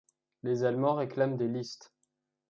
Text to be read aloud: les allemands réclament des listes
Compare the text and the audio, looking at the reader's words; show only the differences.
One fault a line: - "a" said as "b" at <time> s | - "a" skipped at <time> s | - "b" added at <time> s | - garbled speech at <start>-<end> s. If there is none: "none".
none